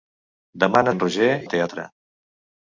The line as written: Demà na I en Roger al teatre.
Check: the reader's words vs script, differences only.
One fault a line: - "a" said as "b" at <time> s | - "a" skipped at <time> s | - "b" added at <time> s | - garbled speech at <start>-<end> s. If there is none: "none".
none